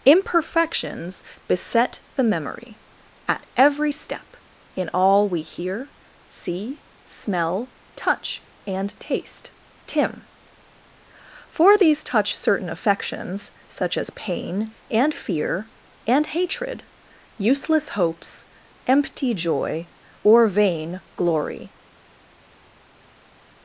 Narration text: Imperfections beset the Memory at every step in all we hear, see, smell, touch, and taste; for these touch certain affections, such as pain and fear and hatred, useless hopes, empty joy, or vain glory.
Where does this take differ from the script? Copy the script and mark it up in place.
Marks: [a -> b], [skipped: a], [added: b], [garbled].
Imperfections beset the Memory at every step in all we hear, see, smell, touch, and taste; [added: tim] for these touch certain affections, such as pain and fear and hatred, useless hopes, empty joy, or vain glory.